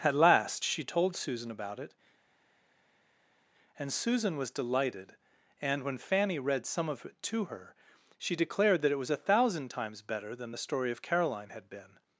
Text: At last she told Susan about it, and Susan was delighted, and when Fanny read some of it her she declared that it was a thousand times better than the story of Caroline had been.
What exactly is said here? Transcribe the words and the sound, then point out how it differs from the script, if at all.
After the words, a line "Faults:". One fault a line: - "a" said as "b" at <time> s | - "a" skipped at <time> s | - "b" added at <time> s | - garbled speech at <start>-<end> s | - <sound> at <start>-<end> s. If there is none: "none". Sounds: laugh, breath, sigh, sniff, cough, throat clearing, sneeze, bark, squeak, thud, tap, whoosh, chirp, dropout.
At last she told Susan about it, and Susan was delighted, and when Fanny read some of it to her she declared that it was a thousand times better than the story of Caroline had been.
Faults:
- "to" added at 7.2 s